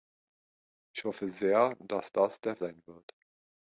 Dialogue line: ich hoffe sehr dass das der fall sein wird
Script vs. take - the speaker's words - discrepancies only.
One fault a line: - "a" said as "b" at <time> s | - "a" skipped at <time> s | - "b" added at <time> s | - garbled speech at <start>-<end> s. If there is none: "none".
- "fall" skipped at 2.5 s